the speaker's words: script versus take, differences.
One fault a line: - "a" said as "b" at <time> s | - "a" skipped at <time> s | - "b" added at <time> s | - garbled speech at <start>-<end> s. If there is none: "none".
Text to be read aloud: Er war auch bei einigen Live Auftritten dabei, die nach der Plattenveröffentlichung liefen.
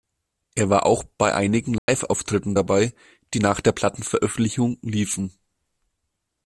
none